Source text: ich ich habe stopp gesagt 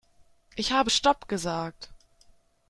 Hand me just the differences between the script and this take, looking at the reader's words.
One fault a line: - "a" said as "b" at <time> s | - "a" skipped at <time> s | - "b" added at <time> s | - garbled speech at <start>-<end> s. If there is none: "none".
- "ich" skipped at 0.7 s